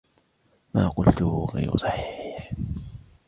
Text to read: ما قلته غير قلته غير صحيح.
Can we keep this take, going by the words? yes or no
no